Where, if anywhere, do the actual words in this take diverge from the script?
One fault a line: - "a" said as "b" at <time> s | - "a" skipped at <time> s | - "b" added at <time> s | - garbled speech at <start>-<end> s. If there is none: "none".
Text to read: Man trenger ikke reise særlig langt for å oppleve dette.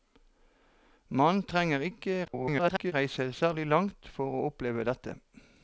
- garbled speech at 2.2-2.9 s